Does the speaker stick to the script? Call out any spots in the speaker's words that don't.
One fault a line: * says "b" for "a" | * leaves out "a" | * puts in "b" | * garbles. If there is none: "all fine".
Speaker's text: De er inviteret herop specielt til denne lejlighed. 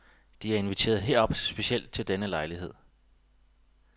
all fine